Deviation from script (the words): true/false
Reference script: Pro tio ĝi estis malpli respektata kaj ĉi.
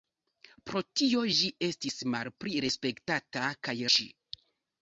false